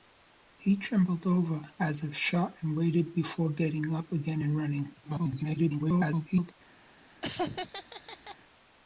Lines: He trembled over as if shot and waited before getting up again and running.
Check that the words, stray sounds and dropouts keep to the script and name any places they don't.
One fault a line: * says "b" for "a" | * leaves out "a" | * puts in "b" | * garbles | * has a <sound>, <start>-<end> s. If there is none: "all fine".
* garbles
* has a laugh, 7.2-8.4 s